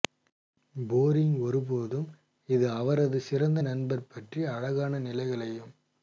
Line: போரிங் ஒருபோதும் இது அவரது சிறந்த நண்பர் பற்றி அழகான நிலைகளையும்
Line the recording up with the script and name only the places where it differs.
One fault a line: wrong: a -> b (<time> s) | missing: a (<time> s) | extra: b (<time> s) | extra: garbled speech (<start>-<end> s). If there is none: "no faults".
no faults